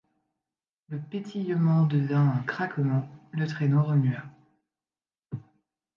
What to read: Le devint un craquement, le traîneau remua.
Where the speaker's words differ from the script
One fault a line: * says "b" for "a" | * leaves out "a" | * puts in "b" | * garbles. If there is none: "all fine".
* puts in "pétillement"